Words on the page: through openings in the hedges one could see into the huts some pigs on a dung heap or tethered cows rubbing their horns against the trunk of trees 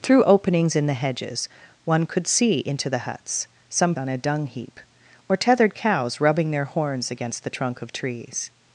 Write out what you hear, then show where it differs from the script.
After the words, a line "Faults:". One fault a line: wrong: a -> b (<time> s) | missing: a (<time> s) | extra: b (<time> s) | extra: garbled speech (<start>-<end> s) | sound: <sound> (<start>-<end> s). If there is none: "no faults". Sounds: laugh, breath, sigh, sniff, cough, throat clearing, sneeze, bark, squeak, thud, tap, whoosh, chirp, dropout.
through openings in the hedges one could see into the huts some on a dung heap or tethered cows rubbing their horns against the trunk of trees
Faults:
missing: pigs (3.9 s)